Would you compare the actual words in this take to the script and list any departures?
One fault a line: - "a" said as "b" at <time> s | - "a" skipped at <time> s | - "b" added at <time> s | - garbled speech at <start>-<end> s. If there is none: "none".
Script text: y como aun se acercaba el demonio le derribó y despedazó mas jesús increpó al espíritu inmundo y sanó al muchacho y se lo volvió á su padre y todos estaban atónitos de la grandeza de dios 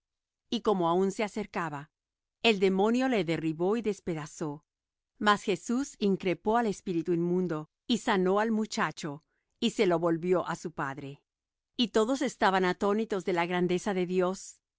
none